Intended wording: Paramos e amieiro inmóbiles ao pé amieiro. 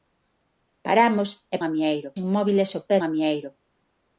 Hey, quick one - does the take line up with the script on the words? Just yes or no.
yes